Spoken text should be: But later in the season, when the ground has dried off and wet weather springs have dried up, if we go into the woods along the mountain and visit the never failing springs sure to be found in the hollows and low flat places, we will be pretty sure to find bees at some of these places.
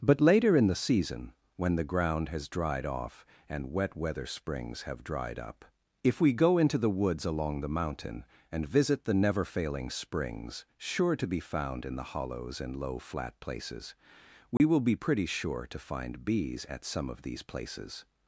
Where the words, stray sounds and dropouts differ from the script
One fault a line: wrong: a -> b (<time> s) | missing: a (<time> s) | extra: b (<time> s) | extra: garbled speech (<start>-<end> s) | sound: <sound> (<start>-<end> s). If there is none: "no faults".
sound: dropout (14.6-14.6 s)